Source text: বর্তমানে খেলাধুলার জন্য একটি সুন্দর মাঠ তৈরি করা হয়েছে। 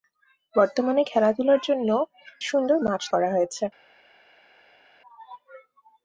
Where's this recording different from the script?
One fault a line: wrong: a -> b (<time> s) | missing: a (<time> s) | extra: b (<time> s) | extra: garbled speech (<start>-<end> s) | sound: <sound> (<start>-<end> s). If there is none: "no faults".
missing: একটি (1.9 s)
missing: তৈরি (3.0 s)